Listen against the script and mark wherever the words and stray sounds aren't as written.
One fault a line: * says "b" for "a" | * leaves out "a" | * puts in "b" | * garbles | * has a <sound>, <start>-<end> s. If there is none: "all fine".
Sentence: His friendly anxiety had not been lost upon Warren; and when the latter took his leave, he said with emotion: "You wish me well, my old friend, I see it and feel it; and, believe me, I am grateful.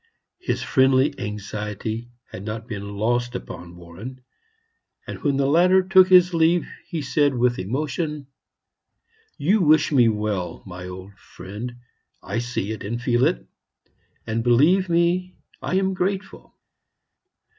all fine